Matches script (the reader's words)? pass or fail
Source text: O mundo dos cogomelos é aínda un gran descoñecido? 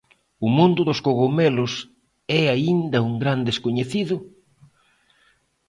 pass